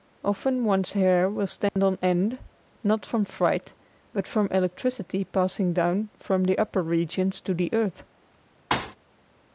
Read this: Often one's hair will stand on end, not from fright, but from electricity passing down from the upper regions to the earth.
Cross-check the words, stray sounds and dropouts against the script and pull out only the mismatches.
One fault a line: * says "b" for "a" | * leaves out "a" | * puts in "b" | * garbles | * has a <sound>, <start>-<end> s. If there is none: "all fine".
* has a dropout, 1.7-1.8 s
* has a thud, 8.7-9.0 s